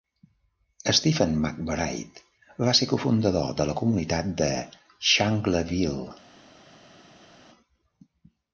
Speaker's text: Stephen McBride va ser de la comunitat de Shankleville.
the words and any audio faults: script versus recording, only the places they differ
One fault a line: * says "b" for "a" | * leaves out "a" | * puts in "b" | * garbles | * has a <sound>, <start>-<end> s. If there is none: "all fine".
* puts in "cofundador"